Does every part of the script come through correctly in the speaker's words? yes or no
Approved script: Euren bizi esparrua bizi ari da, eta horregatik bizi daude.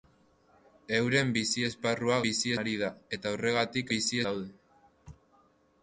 yes